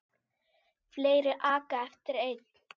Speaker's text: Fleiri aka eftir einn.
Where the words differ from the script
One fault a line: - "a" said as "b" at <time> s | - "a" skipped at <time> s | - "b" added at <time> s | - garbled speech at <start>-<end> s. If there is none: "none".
none